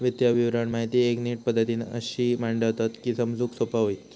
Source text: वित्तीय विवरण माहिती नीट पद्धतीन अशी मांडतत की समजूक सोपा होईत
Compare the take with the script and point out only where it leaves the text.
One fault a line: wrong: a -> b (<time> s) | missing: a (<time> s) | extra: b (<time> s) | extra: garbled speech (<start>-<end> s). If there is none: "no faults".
extra: एक (1.0 s)